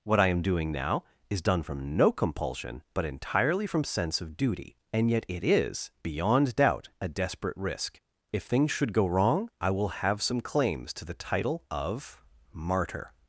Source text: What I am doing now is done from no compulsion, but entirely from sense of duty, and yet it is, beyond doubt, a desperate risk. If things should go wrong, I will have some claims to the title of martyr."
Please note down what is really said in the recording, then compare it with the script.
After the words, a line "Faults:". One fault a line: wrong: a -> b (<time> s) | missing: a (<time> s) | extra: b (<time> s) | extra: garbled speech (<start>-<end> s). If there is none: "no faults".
What I am doing now is done from no compulsion, but entirely from sense of duty, and yet it is, beyond doubt, a desperate risk. If things should go wrong, I will have some claims to the title of martyr."
Faults:
no faults